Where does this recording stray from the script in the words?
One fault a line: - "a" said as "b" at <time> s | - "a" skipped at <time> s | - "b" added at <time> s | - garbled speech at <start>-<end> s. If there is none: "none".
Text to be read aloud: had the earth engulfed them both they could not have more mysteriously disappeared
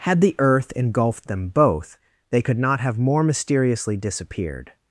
none